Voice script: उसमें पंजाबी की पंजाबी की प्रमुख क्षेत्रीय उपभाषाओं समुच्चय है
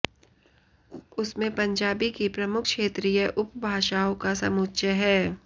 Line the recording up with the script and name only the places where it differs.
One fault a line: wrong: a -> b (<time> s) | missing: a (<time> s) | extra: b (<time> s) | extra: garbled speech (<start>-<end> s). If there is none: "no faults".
missing: पंजाबी की (2.3 s)
extra: का (4.2 s)